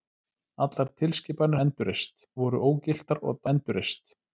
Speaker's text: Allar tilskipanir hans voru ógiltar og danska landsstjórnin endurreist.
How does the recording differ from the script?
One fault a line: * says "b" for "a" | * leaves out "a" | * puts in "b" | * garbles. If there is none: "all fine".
* says "endurreist" for "hans"
* leaves out "danska landsstjórnin"